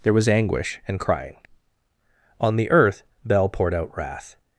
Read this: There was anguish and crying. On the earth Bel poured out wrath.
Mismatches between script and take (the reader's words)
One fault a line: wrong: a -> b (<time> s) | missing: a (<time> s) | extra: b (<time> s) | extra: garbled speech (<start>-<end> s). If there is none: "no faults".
no faults